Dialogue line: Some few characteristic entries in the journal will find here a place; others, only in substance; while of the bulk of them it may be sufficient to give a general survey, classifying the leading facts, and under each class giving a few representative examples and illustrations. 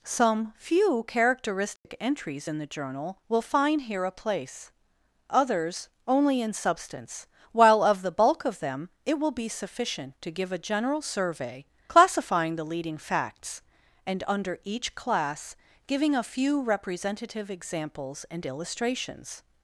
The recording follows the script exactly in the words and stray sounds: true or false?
false